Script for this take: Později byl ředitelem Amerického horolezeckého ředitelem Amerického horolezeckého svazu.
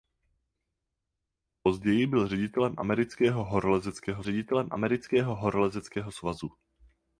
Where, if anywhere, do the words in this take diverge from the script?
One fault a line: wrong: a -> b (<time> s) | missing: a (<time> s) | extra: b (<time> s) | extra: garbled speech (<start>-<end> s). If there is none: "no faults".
no faults